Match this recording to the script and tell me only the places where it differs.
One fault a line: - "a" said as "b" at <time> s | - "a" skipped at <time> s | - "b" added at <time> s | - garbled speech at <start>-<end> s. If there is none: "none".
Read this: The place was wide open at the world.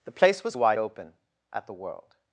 none